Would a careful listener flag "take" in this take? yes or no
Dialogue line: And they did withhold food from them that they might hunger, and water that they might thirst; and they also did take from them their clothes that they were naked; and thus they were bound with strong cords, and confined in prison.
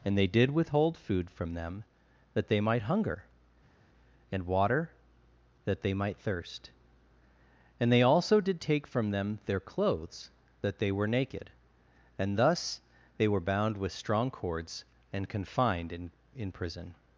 no